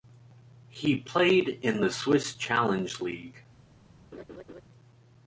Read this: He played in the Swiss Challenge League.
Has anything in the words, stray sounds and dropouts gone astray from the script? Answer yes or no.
yes